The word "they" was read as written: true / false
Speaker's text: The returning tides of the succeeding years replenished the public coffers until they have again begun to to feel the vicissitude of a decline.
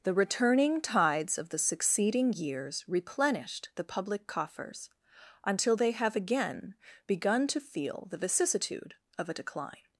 true